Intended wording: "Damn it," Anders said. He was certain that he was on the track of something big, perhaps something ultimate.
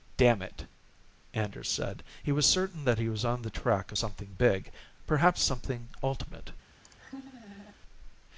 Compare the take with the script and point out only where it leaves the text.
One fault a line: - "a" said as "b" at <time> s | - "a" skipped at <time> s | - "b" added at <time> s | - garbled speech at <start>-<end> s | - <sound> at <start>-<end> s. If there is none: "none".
- laugh at 6.8-7.8 s